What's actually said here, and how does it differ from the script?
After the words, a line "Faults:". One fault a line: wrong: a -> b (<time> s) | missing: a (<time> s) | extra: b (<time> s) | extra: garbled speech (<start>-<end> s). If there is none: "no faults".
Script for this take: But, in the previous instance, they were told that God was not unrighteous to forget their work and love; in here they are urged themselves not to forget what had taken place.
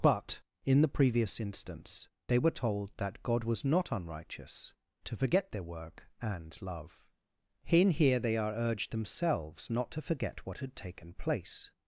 But, in the previous instance, they were told that God was not unrighteous to forget their work and love; in here they are urged themselves not to forget what had taken place.
Faults:
no faults